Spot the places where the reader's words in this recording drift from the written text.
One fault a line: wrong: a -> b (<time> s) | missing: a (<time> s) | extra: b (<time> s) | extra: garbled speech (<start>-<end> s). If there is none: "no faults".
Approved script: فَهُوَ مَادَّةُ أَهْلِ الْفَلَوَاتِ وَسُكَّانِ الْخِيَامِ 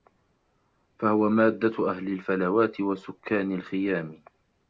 no faults